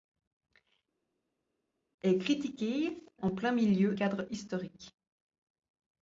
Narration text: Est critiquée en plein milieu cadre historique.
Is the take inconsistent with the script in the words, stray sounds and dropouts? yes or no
no